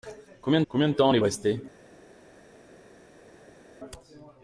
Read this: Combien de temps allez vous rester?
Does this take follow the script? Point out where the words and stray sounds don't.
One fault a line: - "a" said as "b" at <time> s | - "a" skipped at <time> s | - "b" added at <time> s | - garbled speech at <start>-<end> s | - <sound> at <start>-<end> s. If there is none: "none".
- "combien" added at 0.7 s
- "vous" skipped at 1.2 s